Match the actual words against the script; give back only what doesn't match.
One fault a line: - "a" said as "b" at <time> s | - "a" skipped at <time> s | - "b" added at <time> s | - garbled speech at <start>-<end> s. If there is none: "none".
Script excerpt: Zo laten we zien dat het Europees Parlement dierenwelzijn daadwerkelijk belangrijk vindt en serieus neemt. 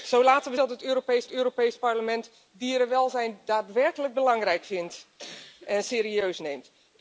- "zien" skipped at 0.6 s
- "Europees" added at 1.3 s